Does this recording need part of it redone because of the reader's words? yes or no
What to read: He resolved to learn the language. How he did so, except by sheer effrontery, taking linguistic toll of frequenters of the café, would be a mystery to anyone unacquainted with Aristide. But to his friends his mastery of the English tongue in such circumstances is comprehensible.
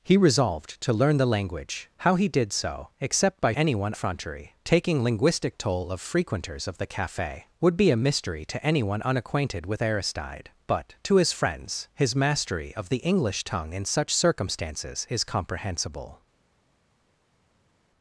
yes